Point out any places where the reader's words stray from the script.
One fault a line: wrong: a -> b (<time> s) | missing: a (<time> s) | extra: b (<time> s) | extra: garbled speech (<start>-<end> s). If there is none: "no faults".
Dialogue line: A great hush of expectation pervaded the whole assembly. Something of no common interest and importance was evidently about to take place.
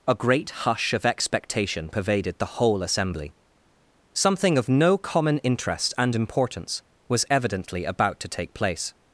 no faults